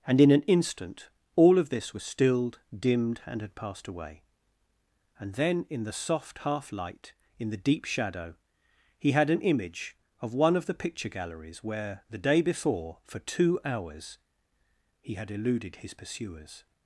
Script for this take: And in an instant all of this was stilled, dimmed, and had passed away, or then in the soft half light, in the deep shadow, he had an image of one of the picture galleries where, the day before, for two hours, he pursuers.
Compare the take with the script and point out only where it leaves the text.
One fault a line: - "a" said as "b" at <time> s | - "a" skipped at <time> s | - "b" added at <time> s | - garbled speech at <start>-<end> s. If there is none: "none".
- "or" said as "and" at 5.2 s
- "had eluded his" added at 15.1 s